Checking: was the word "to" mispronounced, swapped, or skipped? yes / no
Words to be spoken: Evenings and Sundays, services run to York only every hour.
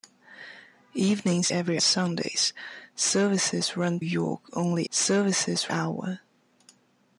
yes